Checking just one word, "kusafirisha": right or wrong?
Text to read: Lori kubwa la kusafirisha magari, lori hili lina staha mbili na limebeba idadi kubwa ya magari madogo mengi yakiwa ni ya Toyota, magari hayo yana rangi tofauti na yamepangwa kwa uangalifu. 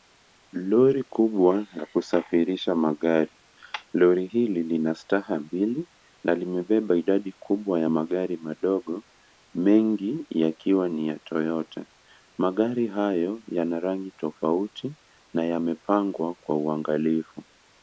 right